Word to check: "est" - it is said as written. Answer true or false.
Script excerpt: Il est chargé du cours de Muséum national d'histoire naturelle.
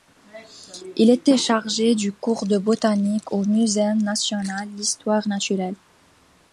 false